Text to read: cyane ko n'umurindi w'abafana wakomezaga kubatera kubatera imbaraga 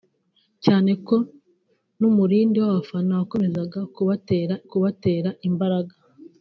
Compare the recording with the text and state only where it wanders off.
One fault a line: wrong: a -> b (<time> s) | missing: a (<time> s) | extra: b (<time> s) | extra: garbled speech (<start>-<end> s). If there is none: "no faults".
no faults